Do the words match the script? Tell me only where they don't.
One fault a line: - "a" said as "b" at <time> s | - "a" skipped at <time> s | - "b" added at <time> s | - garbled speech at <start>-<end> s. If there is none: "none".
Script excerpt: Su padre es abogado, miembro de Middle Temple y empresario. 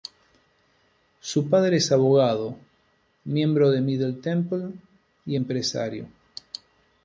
none